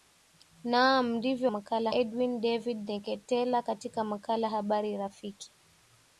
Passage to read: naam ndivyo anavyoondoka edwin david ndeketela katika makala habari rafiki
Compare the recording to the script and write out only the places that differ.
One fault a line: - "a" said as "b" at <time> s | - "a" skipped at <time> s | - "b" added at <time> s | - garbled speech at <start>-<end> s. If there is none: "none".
- "anavyoondoka" said as "makala" at 1.5 s